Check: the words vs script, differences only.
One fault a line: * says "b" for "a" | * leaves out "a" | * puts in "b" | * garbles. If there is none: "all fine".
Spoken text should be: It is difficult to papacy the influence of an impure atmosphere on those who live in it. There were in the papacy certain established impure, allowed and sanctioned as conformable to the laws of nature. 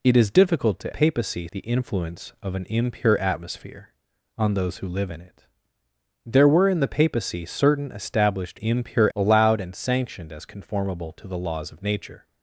all fine